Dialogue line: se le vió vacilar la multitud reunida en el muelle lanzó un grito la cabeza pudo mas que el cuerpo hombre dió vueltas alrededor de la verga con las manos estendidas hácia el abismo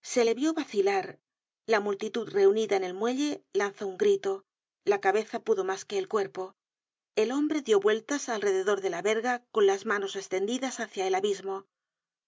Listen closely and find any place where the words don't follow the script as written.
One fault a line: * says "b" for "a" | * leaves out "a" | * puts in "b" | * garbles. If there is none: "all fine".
* puts in "el"